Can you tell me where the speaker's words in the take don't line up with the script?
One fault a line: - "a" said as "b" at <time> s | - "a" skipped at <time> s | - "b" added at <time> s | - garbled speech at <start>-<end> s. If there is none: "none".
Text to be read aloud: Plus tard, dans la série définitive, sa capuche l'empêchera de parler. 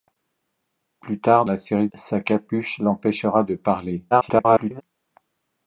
- "dans" skipped at 1.4 s
- "définitive" skipped at 1.9 s
- garbled speech at 4.1-4.8 s